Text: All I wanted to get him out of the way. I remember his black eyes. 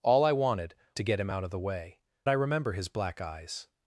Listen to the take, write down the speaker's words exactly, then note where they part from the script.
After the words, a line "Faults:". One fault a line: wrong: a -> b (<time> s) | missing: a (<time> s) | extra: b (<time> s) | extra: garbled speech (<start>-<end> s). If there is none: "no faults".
All I wanted to get him out of the way. I remember his black eyes.
Faults:
no faults